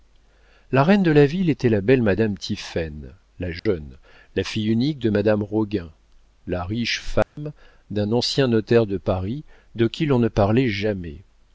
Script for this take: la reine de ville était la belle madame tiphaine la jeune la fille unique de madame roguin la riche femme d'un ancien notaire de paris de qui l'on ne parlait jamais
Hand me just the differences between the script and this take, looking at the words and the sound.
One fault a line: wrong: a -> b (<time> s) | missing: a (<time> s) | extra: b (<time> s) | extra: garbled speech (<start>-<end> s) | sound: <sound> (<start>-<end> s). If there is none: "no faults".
extra: la (1.1 s)
sound: dropout (3.6-3.7 s)
sound: dropout (7.2-7.4 s)